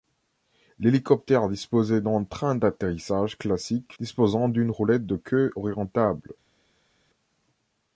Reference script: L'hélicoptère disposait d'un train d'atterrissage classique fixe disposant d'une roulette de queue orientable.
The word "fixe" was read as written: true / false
false